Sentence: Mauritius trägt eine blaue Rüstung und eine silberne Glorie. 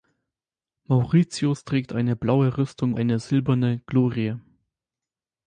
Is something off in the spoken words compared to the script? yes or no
yes